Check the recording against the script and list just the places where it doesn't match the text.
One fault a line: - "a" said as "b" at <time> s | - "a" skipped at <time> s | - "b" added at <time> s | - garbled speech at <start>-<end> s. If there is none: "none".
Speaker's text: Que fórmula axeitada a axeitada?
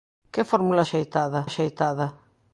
none